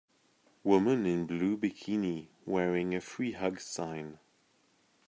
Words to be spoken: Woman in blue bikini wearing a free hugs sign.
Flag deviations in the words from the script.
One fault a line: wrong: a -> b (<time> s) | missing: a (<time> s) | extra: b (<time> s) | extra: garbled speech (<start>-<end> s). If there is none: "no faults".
no faults